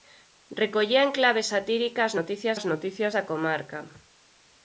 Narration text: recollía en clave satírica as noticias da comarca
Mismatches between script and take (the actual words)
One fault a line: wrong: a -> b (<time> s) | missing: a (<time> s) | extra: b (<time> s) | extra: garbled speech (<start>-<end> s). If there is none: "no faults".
extra: as noticias (2.6 s)